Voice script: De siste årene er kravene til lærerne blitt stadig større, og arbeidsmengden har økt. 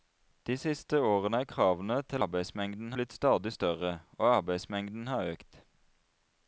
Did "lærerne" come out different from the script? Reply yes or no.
yes